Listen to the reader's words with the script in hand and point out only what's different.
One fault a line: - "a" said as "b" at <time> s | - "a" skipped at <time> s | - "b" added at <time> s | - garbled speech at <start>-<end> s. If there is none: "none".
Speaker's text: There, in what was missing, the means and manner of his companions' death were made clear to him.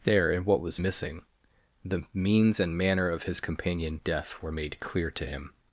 - "companions" said as "companion" at 3.4 s